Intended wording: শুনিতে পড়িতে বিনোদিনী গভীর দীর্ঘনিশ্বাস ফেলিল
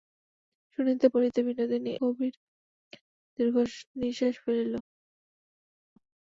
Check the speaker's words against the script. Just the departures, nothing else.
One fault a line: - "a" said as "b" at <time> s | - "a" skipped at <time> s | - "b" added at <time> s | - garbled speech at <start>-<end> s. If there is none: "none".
none